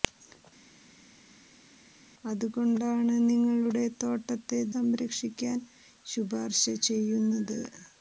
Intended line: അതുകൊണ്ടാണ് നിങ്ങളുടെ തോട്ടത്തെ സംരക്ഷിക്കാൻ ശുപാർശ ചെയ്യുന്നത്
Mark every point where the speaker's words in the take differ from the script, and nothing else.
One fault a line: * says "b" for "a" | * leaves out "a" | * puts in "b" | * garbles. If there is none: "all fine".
all fine